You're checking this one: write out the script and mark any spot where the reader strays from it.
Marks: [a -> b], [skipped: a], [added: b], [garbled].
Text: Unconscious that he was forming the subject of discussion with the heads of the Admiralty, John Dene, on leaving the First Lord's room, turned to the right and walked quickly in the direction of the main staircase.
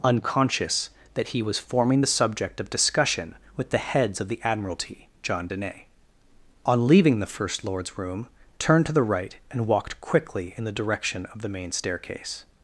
Unconscious that he was forming the subject of discussion with the heads of the Admiralty, John Dene, on leaving the First Lord's room, turned to the right and walked quickly in the direction of the main staircase.